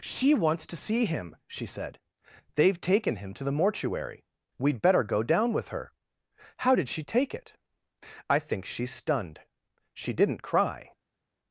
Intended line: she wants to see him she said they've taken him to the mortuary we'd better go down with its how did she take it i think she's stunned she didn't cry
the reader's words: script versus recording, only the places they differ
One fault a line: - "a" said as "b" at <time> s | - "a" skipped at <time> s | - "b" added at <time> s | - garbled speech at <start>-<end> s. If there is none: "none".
- "its" said as "her" at 5.7 s